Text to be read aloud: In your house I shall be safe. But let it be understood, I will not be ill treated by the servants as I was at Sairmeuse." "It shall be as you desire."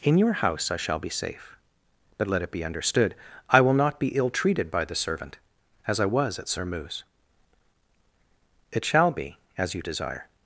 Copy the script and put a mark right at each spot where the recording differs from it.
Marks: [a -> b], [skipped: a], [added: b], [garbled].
In your house I shall be safe. But let it be understood, I will not be ill treated by the [servants -> servant] as I was at Sairmeuse." "It shall be as you desire."